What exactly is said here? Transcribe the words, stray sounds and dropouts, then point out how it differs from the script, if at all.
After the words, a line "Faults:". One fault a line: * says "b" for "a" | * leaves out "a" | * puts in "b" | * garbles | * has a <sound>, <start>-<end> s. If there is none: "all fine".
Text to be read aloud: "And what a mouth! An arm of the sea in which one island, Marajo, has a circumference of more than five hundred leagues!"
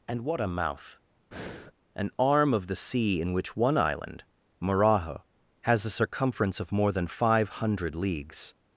"And what a mouth! An arm of the sea in which one island, Marajo, has a circumference of more than five hundred leagues!"
Faults:
* has a breath, 1.3-1.7 s